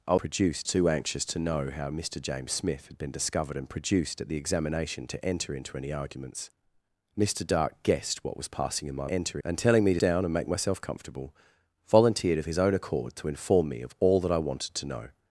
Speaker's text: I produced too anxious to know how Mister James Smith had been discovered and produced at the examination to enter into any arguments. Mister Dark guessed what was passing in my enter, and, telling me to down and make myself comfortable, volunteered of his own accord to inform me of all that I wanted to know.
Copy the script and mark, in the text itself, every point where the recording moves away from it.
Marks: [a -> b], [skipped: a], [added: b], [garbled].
I produced too anxious to know how Mister James Smith had been discovered and produced at the examination to enter into any arguments. Mister Dark guessed what was passing in my enter, and, telling me to down and make myself comfortable, volunteered of his own accord to inform me of all that I wanted to know.